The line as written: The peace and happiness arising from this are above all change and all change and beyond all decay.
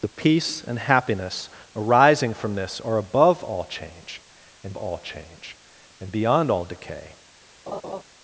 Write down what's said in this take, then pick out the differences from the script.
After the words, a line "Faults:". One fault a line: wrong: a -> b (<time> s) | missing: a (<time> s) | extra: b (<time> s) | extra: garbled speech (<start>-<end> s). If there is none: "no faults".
The peace and happiness arising from this are above all change and all change and beyond all decay.
Faults:
no faults